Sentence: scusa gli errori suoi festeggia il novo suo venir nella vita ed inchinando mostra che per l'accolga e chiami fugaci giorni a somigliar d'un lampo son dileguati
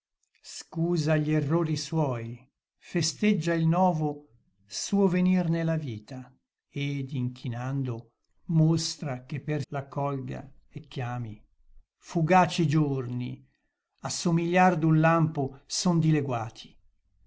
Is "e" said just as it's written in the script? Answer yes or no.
yes